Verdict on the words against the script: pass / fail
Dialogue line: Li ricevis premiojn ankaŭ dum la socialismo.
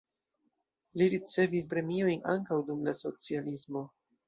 pass